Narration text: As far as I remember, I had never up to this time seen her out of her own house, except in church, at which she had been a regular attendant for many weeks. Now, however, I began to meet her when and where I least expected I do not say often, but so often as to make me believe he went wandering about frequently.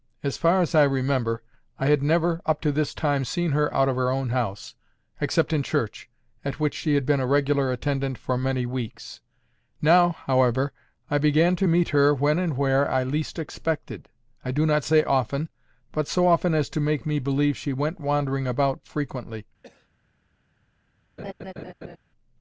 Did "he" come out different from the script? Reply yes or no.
yes